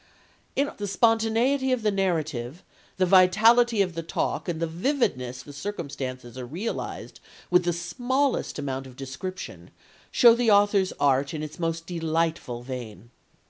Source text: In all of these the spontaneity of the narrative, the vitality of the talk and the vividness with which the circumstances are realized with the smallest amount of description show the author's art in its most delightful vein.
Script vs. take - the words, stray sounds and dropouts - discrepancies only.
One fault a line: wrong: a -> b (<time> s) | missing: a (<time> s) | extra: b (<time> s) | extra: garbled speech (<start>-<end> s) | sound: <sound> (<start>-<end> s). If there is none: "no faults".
missing: all of these (0.7 s)
missing: with which (5.5 s)